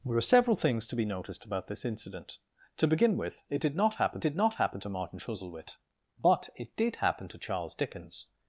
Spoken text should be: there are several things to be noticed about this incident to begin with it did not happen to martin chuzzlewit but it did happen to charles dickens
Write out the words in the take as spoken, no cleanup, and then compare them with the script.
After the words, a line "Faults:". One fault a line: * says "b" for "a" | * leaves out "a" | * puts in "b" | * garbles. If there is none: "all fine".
there are several things to be noticed about this incident to begin with it did not happen did not happen to martin chuzzlewit but it did happen to charles dickens
Faults:
* puts in "did not happen"